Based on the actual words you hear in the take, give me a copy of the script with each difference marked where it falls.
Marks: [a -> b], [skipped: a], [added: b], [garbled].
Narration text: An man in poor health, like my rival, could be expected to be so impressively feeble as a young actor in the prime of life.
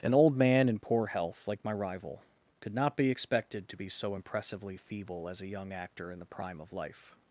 An [added: old] man in poor health, like my rival, could [added: not] be expected to be so impressively feeble as a young actor in the prime of life.